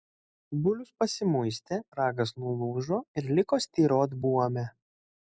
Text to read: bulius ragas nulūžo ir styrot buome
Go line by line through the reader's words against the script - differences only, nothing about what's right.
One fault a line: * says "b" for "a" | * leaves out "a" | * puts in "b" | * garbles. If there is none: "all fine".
* puts in "pasimuistė"
* puts in "liko"